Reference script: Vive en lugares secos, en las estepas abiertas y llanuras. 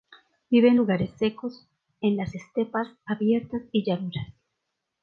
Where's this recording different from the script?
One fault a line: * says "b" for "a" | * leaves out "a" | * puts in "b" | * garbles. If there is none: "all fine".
all fine